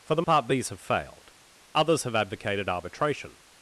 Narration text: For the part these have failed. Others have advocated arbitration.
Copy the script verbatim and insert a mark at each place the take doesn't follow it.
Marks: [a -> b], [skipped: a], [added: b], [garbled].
For the part these have failed. Others have advocated arbitration.